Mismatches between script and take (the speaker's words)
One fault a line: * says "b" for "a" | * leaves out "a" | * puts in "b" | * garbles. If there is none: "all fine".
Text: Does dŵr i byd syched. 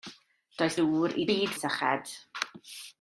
all fine